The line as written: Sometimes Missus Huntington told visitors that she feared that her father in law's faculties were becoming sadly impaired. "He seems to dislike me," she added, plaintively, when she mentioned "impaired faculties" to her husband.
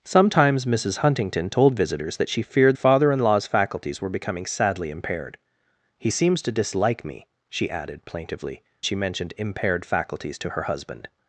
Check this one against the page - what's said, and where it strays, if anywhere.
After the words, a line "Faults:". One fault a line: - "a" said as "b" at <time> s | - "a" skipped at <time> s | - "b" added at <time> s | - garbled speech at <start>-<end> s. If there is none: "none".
Sometimes Missus Huntington told visitors that she feared father in law's faculties were becoming sadly impaired. "He seems to dislike me," she added, plaintively, she mentioned "impaired faculties" to her husband.
Faults:
- "that her" skipped at 2.8 s
- "when" skipped at 8.6 s